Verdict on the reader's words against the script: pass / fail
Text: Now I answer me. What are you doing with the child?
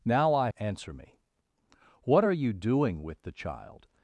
pass